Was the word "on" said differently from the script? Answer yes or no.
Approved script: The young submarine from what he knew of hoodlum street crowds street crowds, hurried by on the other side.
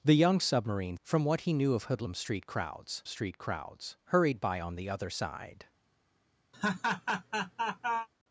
no